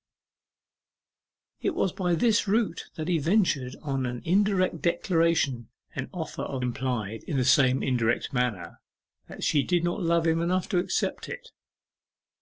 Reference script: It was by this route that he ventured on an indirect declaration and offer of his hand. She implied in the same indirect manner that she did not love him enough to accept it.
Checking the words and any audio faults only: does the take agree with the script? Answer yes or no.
no